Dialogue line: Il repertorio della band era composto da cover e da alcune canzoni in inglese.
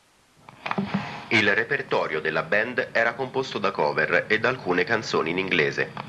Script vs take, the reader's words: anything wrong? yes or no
no